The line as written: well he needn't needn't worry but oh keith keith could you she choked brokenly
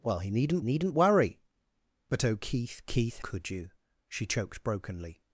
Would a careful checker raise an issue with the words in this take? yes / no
no